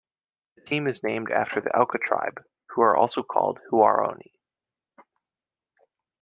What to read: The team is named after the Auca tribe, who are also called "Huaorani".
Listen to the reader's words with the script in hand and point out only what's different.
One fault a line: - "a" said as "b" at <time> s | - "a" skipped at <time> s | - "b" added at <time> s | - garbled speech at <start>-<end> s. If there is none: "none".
none